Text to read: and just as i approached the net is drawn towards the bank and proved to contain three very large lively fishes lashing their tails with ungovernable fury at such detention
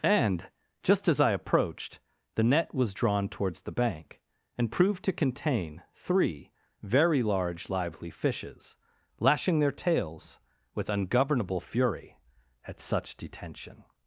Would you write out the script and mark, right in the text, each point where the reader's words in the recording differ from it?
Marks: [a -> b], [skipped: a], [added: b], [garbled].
and just as i approached the net [is -> was] drawn towards the bank and proved to contain three very large lively fishes lashing their tails with ungovernable fury at such detention